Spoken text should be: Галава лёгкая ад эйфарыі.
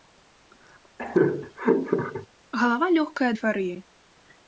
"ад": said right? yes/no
no